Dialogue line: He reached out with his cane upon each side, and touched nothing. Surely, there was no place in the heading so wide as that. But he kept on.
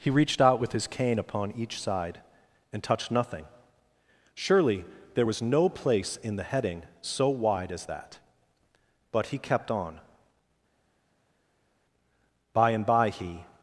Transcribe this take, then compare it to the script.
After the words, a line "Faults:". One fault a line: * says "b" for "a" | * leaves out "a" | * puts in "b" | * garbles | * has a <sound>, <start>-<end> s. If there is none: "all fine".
He reached out with his cane upon each side, and touched nothing. Surely, there was no place in the heading so wide as that. But he kept on. By and by he
Faults:
* puts in "By and by he"